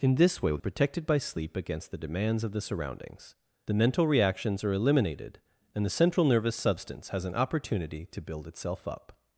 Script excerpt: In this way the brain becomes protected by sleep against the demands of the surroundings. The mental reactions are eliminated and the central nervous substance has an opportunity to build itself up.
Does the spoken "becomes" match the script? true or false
false